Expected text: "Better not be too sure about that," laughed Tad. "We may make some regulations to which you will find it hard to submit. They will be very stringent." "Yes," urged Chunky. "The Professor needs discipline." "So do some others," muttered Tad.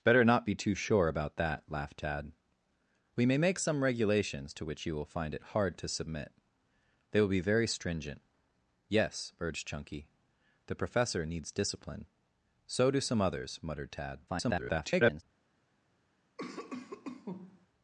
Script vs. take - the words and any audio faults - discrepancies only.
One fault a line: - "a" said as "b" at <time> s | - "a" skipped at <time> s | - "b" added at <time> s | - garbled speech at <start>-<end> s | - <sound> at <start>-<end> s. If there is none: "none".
- garbled speech at 14.3-15.2 s
- cough at 16.4-17.7 s